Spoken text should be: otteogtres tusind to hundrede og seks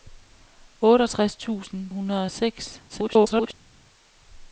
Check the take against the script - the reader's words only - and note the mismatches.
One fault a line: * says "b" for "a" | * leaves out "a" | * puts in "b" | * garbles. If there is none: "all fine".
* leaves out "to"
* garbles